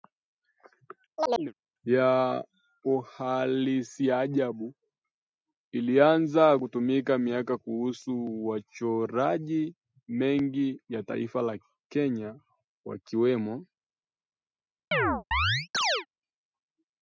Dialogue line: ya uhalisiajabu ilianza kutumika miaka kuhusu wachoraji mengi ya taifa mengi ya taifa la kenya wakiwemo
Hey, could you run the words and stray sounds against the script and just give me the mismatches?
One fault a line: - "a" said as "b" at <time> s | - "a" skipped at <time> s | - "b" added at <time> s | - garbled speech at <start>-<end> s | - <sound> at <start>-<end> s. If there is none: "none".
- chirp at 1.2-1.5 s
- "mengi ya taifa" skipped at 11.4 s
- chirp at 14.9-16.1 s